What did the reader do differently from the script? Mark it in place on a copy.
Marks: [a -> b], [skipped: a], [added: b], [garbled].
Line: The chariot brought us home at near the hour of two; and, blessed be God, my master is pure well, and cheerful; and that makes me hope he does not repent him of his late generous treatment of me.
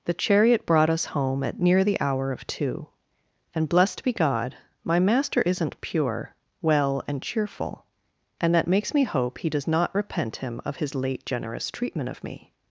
The chariot brought us home at near the hour of two; and, blessed be God, my master [is -> isn't] pure well, and cheerful; and that makes me hope he does not repent him of his late generous treatment of me.